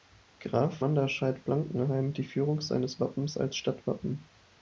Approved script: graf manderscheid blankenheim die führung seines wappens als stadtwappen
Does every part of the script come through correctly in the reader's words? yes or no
yes